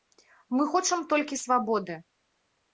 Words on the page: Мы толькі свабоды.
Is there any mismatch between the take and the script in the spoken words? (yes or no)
yes